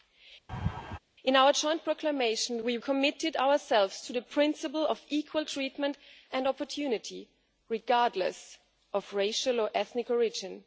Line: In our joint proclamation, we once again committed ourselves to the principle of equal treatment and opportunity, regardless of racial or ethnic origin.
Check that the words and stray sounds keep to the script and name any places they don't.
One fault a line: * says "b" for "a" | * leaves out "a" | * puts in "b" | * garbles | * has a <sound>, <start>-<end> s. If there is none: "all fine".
* has a laugh, 0.5-1.0 s
* leaves out "once again"